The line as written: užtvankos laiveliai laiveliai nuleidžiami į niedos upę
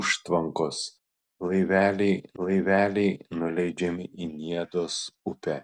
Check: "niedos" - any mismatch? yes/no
no